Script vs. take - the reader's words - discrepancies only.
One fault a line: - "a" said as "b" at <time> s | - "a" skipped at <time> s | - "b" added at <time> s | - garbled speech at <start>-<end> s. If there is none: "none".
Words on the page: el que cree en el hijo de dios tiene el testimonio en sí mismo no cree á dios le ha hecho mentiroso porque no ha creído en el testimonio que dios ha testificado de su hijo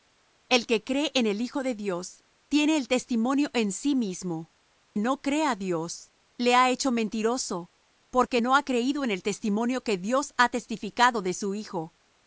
none